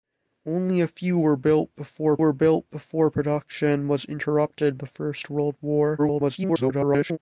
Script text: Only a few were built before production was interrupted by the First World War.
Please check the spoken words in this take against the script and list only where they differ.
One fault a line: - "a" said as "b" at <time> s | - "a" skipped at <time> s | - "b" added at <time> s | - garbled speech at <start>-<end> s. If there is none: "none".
- "were built before" added at 2.2 s
- "by" skipped at 4.8 s
- garbled speech at 6.0-7.2 s